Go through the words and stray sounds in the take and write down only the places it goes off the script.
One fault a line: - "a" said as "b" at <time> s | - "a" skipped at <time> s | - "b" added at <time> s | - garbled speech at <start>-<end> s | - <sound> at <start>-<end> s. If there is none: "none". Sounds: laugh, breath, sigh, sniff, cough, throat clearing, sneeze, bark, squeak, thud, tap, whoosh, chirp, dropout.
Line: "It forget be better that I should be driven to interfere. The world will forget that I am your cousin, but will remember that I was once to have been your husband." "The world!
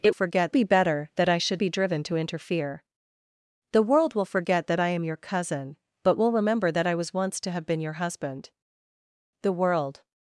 none